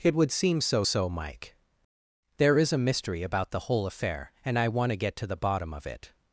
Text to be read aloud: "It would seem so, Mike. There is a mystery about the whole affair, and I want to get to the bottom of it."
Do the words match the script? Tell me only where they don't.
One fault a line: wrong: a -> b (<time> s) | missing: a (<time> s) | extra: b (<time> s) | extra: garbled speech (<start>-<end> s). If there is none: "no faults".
extra: so (0.8 s)